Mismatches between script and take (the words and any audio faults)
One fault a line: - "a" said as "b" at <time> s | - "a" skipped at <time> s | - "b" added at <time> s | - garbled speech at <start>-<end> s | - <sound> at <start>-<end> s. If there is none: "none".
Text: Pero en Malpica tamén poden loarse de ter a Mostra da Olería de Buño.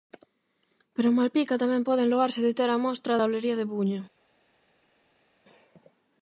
none